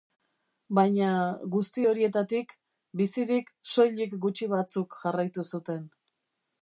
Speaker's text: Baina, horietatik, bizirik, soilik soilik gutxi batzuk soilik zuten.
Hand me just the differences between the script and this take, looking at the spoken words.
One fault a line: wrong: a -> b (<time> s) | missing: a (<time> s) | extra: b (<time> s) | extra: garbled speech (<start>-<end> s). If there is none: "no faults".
extra: guzti (1.6 s)
missing: soilik (4.1 s)
wrong: soilik -> jarraitu (5.0 s)